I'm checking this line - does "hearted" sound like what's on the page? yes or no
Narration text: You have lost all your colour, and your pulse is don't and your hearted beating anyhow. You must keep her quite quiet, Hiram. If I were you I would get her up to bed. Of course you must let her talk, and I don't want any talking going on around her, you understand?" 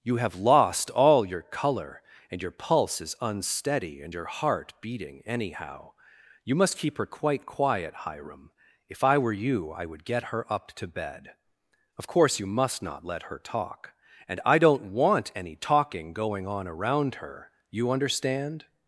no